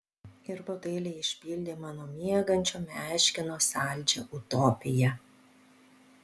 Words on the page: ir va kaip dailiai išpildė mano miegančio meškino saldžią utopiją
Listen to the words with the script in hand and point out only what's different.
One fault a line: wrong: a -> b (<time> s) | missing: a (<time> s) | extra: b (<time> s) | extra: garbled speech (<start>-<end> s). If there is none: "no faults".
missing: kaip (0.8 s)